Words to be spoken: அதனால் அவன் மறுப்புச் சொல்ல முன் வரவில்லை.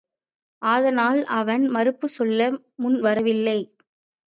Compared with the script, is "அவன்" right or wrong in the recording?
right